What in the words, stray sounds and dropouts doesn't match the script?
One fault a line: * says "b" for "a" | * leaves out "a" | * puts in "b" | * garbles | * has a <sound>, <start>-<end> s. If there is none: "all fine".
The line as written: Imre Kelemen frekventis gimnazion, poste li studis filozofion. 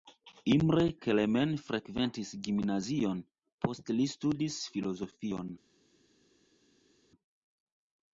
all fine